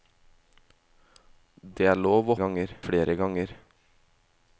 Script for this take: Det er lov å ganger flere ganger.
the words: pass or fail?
pass